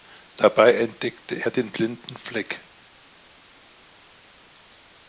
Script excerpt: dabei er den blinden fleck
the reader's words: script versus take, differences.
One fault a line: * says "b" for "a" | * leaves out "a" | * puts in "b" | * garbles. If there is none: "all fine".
* puts in "entdeckte"